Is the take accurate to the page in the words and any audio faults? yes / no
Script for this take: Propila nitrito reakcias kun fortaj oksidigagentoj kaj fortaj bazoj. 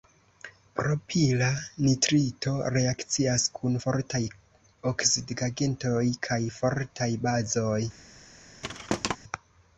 no